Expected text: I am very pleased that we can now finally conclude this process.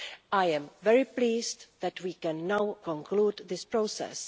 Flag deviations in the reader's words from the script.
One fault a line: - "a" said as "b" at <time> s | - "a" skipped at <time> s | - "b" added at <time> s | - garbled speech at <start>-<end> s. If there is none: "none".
- "finally" skipped at 2.8 s